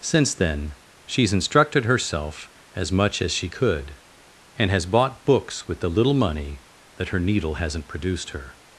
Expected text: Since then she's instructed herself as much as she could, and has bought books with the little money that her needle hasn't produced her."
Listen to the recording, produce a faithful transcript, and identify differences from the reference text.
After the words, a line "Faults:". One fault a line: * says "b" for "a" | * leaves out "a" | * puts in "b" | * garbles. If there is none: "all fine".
Since then she's instructed herself as much as she could, and has bought books with the little money that her needle hasn't produced her."
Faults:
all fine